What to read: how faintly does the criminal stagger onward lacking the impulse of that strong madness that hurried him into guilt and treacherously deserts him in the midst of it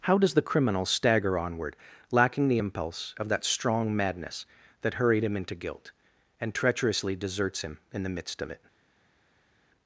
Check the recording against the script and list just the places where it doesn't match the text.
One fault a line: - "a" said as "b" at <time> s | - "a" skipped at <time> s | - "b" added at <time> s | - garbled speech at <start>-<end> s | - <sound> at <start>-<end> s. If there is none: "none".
- "faintly" skipped at 0.2 s